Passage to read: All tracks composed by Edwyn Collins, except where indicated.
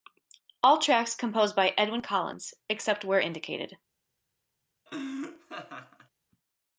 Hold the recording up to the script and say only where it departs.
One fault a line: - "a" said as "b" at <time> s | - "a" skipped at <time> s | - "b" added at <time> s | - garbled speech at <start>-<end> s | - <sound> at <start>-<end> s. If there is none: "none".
- laugh at 4.9-6.1 s